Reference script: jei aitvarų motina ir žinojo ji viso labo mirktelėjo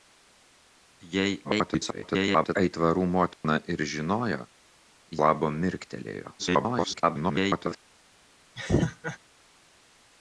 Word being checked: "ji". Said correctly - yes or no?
no